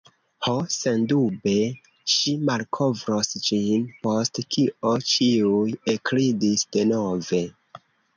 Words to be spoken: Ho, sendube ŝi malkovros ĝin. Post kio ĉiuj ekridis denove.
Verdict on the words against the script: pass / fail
pass